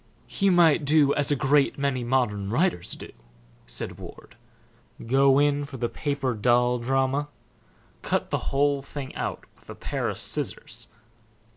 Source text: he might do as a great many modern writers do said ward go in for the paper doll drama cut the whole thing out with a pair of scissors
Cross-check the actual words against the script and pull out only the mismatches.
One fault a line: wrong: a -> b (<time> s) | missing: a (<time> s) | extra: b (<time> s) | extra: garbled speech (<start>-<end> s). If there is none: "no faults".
no faults